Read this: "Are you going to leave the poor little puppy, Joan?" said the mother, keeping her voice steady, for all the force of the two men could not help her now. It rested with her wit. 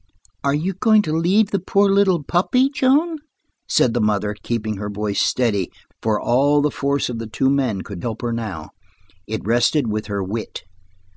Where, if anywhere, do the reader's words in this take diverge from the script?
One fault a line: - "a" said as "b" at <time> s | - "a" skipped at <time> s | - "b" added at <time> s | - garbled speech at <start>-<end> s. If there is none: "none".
- "not" skipped at 8.0 s